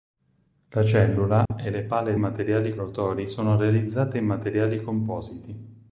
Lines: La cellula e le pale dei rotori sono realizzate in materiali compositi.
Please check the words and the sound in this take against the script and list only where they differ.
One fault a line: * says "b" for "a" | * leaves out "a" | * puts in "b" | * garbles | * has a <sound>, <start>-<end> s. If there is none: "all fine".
* has a dropout, 1.5-1.5 s
* says "materiali" for "dei"